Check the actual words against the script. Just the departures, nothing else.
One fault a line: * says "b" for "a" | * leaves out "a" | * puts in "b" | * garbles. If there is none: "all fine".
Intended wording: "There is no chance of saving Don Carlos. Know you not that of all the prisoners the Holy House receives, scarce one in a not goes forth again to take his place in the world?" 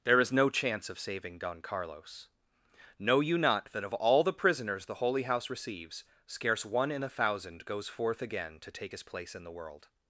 * says "thousand" for "not"